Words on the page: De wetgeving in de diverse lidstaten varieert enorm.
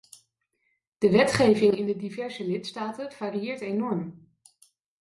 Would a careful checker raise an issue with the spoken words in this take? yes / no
no